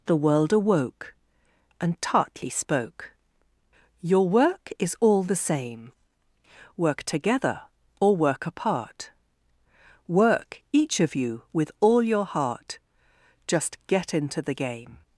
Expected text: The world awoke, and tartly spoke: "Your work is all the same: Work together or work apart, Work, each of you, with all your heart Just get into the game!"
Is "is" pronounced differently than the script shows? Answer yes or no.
no